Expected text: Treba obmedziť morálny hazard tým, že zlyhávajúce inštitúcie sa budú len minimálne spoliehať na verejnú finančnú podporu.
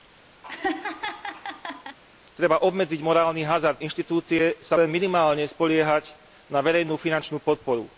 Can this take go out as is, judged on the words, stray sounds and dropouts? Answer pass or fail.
fail